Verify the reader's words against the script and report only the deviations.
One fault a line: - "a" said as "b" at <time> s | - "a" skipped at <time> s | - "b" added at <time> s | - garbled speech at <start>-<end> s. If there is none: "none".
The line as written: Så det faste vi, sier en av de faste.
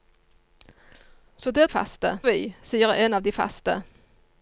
none